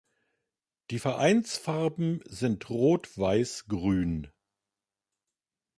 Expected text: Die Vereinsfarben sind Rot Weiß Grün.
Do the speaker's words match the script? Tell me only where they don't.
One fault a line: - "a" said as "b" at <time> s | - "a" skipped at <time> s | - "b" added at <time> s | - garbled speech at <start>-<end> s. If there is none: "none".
none